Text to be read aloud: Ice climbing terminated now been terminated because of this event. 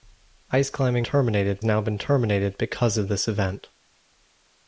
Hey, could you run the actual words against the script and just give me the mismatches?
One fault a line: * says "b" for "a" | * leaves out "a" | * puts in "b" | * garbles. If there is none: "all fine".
all fine